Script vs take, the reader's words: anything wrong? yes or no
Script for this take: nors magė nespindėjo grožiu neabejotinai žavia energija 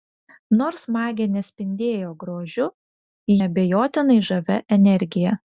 no